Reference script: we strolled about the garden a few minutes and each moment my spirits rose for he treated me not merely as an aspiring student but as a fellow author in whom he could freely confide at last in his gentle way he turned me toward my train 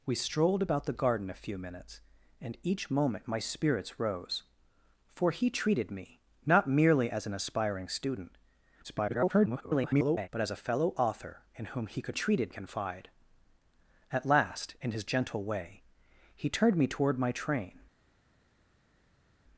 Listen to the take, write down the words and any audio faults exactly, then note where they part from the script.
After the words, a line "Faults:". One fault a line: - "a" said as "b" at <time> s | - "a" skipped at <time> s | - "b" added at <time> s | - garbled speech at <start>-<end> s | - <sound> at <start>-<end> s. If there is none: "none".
we strolled about the garden a few minutes and each moment my spirits rose for he treated me not merely as an aspiring student [garbled] but as a fellow author in whom he could treated confide at last in his gentle way he turned me toward my train
Faults:
- garbled speech at 8.8-10.3 s
- "freely" said as "treated" at 12.1 s